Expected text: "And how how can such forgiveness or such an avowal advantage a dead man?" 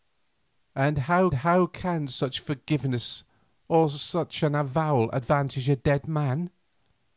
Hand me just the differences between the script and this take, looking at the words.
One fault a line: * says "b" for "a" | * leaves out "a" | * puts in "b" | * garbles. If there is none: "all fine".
all fine